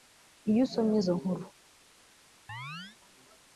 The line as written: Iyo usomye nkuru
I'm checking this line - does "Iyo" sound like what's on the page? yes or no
yes